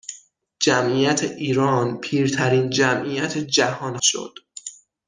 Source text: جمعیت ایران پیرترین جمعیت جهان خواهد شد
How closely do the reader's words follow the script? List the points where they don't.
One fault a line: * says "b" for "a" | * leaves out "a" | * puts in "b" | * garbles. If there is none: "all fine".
* leaves out "خواهد"